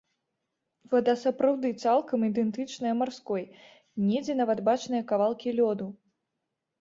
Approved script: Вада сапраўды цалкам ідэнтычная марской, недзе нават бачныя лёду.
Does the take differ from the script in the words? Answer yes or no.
yes